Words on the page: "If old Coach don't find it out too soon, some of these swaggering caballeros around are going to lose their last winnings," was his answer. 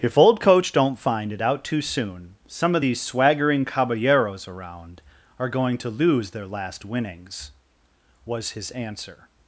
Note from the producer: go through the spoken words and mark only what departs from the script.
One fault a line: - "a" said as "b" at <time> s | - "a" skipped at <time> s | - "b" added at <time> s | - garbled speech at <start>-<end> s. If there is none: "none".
none